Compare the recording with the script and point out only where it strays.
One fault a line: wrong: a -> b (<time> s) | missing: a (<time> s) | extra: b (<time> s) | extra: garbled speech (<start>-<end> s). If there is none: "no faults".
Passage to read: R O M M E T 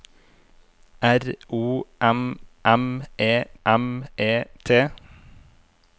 extra: M E (3.7 s)